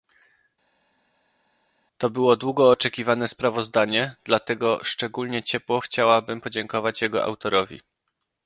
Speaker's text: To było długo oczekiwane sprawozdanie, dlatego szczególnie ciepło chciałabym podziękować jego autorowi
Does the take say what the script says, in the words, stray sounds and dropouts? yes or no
yes